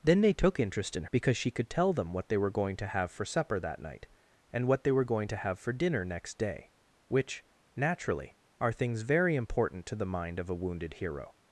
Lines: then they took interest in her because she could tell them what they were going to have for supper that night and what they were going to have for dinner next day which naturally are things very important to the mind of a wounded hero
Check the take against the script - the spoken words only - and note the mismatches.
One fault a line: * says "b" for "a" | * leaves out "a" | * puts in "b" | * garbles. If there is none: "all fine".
* leaves out "her"